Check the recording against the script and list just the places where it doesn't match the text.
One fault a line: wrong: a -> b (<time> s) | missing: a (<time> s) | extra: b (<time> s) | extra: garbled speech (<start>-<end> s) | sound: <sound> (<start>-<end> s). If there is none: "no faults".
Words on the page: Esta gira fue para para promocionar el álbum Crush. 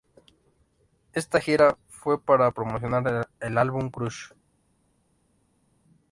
missing: para (2.5 s)